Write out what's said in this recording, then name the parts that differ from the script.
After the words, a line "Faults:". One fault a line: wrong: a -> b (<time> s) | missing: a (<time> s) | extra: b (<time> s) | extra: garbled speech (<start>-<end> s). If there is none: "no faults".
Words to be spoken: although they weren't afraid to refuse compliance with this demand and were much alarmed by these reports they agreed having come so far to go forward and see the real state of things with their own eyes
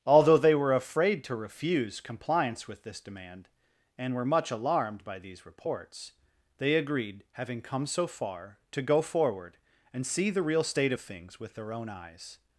although they were afraid to refuse compliance with this demand and were much alarmed by these reports they agreed having come so far to go forward and see the real state of things with their own eyes
Faults:
wrong: weren't -> were (0.6 s)